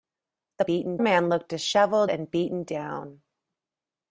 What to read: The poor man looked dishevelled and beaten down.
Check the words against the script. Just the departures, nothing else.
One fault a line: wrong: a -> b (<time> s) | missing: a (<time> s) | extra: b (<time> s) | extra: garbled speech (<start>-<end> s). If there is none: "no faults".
wrong: poor -> beaten (0.6 s)